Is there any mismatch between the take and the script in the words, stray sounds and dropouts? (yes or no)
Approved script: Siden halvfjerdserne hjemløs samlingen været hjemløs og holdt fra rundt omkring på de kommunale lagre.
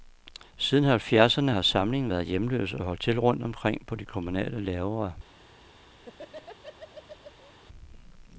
yes